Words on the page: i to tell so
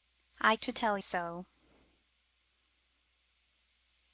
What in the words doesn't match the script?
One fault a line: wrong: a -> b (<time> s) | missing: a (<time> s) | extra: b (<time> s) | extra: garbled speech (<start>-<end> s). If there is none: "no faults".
no faults